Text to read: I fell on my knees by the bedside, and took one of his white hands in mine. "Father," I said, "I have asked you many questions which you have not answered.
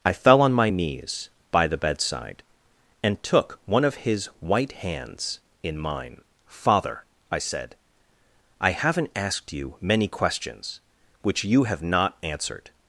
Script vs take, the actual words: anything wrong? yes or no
yes